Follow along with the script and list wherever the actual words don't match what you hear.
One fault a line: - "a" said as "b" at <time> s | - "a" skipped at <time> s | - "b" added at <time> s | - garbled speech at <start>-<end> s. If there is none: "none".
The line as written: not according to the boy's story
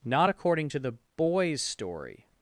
none